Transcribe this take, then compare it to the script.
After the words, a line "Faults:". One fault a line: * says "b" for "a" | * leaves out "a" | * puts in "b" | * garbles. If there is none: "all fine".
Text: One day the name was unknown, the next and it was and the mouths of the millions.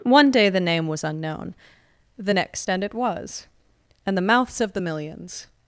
One day the name was unknown, the next and it was and the mouths of the millions.
Faults:
all fine